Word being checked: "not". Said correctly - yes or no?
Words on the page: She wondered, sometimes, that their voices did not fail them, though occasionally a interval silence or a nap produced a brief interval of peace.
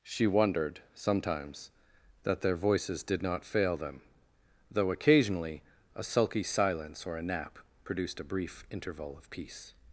yes